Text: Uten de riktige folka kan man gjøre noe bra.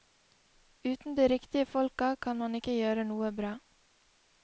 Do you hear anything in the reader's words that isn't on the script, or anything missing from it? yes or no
yes